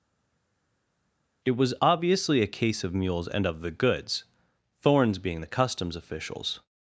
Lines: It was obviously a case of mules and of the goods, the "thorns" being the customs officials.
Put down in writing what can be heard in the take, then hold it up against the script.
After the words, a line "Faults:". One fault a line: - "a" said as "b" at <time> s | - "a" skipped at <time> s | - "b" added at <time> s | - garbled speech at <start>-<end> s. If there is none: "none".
It was obviously a case of mules and of the goods, "thorns" being the customs officials.
Faults:
- "the" skipped at 4.2 s